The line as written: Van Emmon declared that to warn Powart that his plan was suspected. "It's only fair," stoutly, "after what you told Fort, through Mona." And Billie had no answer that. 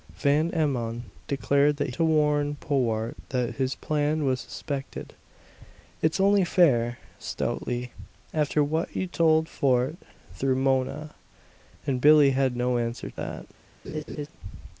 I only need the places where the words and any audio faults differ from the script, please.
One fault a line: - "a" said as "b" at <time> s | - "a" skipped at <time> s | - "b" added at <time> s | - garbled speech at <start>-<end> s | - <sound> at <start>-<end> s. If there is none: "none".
- laugh at 13.8-14.3 s